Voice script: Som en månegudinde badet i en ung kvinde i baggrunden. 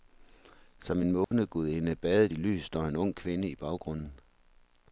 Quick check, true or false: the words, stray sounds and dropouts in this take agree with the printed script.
false